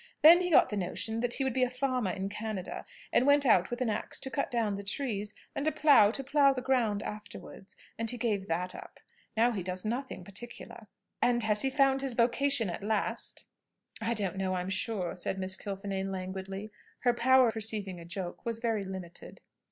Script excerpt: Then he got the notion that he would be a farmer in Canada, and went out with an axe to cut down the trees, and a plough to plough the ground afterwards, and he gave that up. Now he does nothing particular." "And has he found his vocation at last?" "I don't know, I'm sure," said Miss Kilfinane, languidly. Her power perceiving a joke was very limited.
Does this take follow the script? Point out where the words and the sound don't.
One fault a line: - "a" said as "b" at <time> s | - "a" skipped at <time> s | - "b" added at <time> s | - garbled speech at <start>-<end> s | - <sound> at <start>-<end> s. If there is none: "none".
none